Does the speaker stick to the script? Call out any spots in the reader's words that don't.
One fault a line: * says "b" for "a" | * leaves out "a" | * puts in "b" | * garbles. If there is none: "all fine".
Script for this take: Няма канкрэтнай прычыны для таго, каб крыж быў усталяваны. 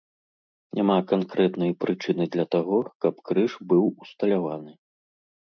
all fine